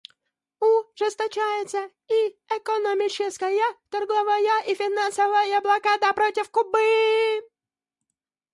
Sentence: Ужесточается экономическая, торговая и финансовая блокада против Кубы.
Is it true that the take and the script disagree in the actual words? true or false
true